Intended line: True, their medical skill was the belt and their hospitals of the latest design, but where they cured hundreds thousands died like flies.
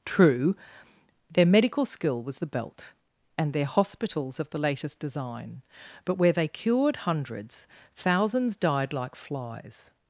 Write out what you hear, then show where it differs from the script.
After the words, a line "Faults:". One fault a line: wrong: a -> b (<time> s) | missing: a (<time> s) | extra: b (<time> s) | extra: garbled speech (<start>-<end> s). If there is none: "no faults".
True, their medical skill was the belt and their hospitals of the latest design, but where they cured hundreds thousands died like flies.
Faults:
no faults